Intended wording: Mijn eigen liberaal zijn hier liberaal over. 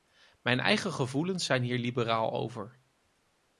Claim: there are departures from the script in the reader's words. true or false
true